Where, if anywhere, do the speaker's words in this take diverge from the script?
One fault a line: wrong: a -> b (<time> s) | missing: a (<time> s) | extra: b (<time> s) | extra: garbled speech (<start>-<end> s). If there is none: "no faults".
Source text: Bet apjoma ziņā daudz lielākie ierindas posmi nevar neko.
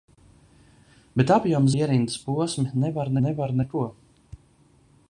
missing: ziņā daudz lielākie (1.7 s)
extra: nevar (3.3 s)